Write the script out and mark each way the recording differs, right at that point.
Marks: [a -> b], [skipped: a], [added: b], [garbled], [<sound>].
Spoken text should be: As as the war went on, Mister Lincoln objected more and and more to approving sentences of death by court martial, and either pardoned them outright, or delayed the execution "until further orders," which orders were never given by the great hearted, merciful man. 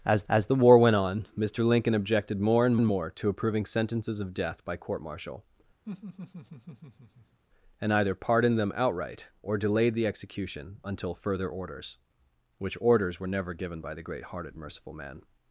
As as the war went on, Mister Lincoln objected more and and more to approving sentences of death by court martial, [laugh] and either pardoned them outright, or delayed the execution "until further orders," which orders were never given by the great hearted, merciful man.